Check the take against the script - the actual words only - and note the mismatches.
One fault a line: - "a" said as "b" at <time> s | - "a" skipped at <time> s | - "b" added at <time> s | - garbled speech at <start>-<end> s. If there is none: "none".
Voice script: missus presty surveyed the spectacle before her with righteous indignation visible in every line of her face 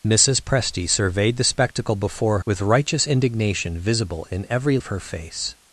- "her" skipped at 2.4 s
- "line" skipped at 4.8 s